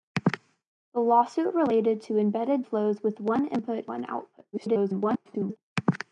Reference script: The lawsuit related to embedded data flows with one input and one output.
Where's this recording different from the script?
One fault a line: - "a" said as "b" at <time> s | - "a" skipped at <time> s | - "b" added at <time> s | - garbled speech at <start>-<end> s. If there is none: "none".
- "data" skipped at 2.6 s
- "and" skipped at 3.9 s
- garbled speech at 4.5-5.6 s